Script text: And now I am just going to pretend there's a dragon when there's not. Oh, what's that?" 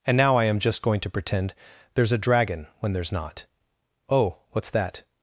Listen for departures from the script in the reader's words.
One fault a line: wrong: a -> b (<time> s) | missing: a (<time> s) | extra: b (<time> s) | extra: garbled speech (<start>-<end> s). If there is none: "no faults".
no faults